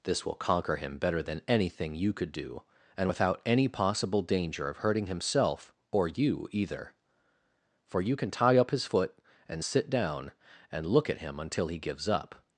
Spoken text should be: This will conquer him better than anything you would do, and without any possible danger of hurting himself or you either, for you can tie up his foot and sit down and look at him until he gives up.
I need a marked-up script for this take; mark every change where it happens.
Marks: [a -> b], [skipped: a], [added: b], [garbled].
This will conquer him better than anything you [would -> could] do, and without any possible danger of hurting himself or you either, for you can tie up his foot and sit down and look at him until he gives up.